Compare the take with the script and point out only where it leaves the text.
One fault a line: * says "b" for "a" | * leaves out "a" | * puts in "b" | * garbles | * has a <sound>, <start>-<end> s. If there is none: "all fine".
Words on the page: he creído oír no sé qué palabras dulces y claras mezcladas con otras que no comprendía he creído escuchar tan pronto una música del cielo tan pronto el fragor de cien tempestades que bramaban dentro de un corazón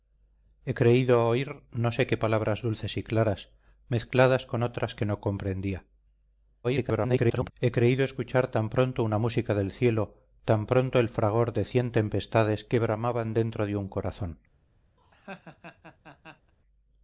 * garbles
* has a laugh, 15.0-16.5 s